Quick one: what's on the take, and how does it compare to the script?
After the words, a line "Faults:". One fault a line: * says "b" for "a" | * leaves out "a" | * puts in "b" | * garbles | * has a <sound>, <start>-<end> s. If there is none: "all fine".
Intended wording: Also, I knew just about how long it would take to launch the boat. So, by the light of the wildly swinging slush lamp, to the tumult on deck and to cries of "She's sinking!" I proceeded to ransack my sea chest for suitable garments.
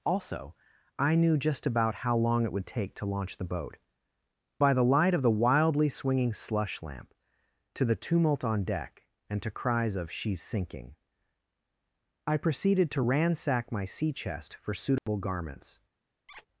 Also, I knew just about how long it would take to launch the boat. By the light of the wildly swinging slush lamp, to the tumult on deck and to cries of "She's sinking!" I proceeded to ransack my sea chest for suitable garments.
Faults:
* leaves out "So"
* has a dropout, 15.0-15.1 s
* has a squeak, 16.3-16.5 s